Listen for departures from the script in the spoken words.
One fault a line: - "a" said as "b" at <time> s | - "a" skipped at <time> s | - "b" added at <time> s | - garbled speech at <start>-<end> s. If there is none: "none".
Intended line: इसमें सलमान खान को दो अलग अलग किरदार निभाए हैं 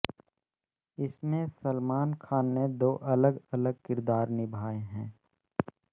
- "को" said as "ने" at 2.5 s